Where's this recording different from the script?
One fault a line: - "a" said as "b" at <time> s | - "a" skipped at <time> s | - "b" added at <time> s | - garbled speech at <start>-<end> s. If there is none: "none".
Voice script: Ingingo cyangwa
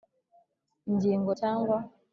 none